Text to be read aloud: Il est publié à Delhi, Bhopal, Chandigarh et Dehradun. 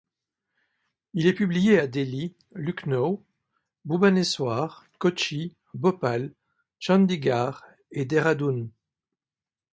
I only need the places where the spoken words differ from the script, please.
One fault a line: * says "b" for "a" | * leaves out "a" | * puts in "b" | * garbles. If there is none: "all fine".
* puts in "Lucknow Bhubaneswar Kochi"